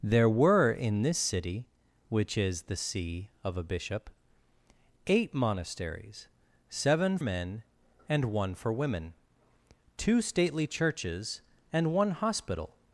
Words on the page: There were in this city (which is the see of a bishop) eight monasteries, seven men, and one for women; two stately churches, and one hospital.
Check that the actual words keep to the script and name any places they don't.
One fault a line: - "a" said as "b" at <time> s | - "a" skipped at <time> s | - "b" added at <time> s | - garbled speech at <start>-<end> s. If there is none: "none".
none